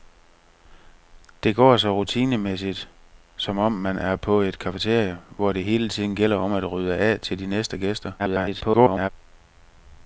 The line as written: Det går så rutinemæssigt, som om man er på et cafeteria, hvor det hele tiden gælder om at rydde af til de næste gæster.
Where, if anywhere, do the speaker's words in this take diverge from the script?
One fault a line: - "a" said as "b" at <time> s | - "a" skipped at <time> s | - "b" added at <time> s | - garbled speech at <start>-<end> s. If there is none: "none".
- garbled speech at 8.2-9.1 s